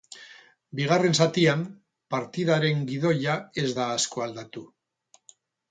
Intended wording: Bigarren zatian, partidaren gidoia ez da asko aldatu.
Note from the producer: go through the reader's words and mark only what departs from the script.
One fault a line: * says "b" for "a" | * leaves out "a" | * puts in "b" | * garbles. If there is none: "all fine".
all fine